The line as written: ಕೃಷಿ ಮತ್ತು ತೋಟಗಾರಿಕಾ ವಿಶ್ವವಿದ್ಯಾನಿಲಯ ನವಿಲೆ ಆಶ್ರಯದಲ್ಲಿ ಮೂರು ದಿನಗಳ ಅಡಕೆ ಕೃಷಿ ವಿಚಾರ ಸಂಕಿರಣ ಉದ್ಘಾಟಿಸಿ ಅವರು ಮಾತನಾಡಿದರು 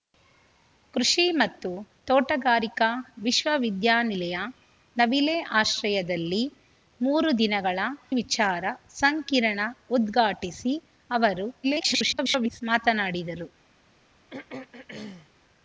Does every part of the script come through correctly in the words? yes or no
no